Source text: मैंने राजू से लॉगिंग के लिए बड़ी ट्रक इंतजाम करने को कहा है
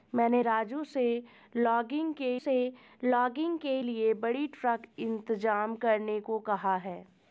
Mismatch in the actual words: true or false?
true